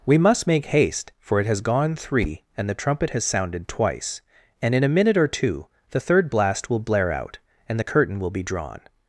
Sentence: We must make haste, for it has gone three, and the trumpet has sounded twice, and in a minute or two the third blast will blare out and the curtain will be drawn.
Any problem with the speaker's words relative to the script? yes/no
no